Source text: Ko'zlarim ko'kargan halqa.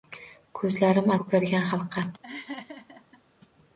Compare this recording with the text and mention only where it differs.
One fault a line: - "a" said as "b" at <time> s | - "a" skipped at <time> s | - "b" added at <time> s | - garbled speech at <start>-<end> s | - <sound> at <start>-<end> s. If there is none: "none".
- laugh at 2.2-3.2 s